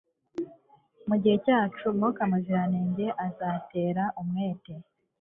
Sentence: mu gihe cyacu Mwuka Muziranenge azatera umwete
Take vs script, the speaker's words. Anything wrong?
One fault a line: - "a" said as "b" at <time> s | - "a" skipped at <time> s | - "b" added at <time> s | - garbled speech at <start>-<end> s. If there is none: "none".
none